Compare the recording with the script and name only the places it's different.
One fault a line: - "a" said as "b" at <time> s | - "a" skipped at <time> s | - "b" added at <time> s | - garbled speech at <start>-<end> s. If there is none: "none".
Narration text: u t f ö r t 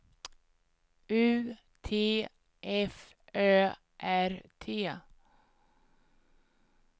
none